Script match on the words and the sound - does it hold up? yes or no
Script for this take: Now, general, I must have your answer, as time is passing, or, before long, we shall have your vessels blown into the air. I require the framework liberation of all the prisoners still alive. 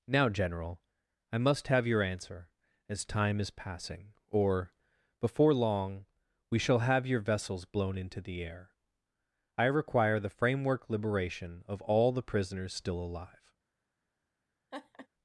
no